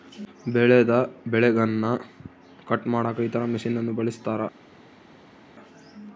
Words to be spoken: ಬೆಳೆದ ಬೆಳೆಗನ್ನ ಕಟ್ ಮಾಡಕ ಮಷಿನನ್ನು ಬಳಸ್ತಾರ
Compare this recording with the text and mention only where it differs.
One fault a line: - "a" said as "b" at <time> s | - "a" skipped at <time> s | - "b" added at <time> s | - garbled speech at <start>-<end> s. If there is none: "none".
- "ಇತರ" added at 3.2 s